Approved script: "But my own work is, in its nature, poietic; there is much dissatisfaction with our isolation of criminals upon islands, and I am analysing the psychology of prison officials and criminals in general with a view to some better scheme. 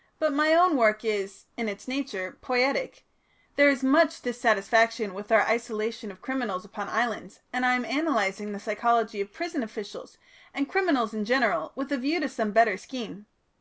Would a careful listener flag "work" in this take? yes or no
no